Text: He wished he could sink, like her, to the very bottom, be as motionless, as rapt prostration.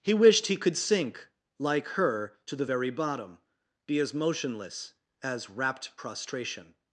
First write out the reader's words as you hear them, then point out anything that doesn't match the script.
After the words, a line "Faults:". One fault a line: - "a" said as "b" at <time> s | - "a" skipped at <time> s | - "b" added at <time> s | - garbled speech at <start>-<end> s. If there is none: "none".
He wished he could sink, like her, to the very bottom, be as motionless, as rapt prostration.
Faults:
none